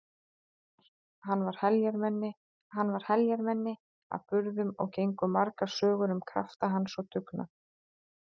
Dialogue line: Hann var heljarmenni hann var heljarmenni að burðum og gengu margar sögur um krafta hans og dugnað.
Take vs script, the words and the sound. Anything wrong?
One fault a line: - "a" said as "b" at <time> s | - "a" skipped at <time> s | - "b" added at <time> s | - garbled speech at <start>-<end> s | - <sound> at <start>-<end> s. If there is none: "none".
none